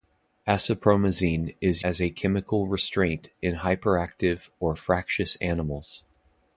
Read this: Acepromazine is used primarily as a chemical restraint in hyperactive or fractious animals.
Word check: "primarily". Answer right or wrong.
wrong